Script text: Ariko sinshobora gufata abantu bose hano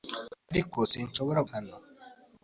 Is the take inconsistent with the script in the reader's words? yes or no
yes